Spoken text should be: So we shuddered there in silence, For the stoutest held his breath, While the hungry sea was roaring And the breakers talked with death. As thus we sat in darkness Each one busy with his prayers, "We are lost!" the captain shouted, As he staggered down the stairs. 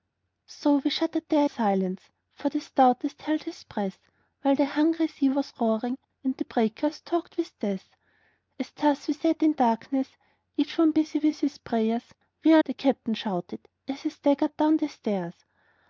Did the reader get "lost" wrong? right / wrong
wrong